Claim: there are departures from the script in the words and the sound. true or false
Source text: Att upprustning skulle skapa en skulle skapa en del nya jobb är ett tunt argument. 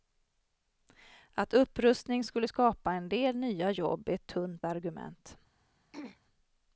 true